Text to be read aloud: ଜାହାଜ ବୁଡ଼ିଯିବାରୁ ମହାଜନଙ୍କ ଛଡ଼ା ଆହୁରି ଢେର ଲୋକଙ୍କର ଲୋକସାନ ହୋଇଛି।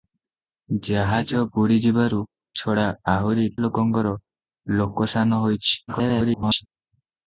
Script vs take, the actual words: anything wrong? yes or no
yes